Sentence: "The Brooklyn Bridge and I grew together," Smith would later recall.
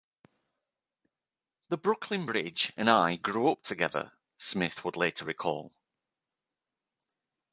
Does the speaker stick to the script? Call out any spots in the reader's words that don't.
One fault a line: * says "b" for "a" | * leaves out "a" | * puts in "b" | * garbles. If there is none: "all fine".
* puts in "up"